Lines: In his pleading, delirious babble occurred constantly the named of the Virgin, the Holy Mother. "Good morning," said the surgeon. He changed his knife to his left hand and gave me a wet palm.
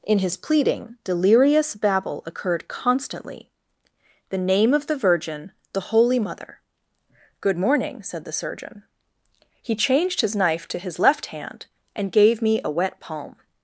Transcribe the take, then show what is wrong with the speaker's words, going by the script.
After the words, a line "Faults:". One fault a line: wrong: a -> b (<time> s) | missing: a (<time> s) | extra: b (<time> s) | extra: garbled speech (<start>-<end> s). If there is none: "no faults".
In his pleading, delirious babble occurred constantly the name of the Virgin, the Holy Mother. "Good morning," said the surgeon. He changed his knife to his left hand and gave me a wet palm.
Faults:
wrong: named -> name (4.4 s)